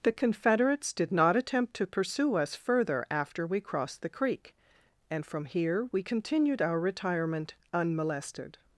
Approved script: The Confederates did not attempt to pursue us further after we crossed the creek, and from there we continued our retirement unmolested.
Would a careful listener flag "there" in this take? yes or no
yes